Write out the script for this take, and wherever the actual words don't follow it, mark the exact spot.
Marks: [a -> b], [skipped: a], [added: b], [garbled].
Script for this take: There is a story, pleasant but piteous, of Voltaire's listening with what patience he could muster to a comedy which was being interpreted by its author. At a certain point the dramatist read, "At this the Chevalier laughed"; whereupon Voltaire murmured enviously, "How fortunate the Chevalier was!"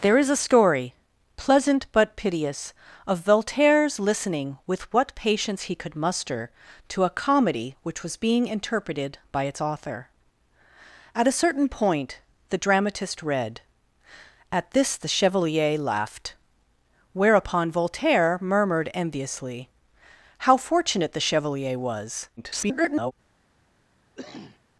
There is a story, pleasant but piteous, of Voltaire's listening with what patience he could muster to a comedy which was being interpreted by its author. At a certain point the dramatist read, "At this the Chevalier laughed"; whereupon Voltaire murmured enviously, "How fortunate the Chevalier was!" [garbled]